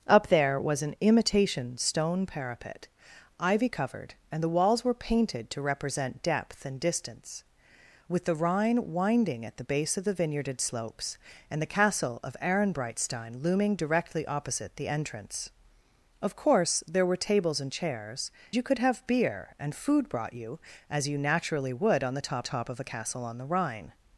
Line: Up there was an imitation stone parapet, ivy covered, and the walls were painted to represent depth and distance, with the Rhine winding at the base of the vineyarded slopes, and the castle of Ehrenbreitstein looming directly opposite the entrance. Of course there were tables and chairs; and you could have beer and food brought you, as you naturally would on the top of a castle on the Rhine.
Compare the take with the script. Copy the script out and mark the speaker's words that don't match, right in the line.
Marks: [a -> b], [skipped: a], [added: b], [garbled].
Up there was an imitation stone parapet, ivy covered, and the walls were painted to represent depth and distance, with the Rhine winding at the base of the vineyarded slopes, and the castle of Ehrenbreitstein looming directly opposite the entrance. Of course there were tables and chairs; [skipped: and] you could have beer and food brought you, as you naturally would on the top [added: top] of a castle on the Rhine.